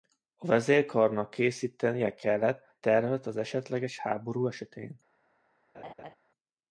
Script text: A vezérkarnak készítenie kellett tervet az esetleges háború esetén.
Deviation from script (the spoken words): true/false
false